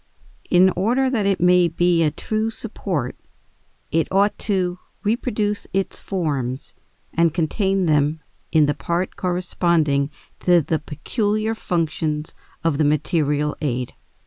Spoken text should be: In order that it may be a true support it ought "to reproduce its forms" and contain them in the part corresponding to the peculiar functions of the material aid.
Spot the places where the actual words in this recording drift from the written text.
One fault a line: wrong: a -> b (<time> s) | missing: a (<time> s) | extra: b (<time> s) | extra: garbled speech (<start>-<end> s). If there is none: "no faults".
no faults